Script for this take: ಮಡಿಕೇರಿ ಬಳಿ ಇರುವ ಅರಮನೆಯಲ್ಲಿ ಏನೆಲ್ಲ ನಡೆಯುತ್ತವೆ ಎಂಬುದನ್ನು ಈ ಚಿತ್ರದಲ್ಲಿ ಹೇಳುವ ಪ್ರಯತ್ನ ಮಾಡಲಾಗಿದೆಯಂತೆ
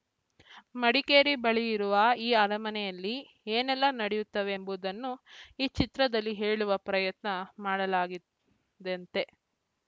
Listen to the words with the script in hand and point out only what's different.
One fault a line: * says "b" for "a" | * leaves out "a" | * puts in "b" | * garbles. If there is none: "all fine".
* puts in "ಈ"